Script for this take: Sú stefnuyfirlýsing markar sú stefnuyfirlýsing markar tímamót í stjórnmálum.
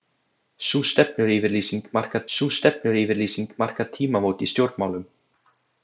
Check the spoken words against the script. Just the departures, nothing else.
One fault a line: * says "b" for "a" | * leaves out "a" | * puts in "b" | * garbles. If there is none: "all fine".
all fine